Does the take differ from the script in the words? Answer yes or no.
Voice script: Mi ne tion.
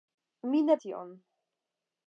no